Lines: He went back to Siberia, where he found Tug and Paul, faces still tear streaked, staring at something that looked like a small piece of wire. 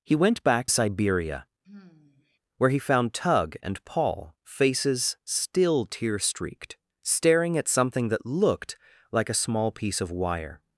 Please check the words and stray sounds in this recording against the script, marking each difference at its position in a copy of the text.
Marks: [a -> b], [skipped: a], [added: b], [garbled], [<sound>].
He went back [skipped: to] Siberia, [sigh] where he found Tug and Paul, faces still tear streaked, staring at something that looked like a small piece of wire.